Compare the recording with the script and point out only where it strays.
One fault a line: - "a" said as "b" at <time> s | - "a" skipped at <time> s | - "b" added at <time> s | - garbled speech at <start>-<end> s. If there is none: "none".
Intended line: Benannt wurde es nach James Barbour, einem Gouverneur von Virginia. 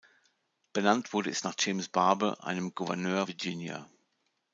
- "von" skipped at 3.3 s